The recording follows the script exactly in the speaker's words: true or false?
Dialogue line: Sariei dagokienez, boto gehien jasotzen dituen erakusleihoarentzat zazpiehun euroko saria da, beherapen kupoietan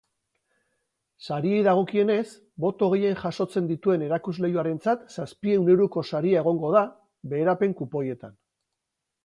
false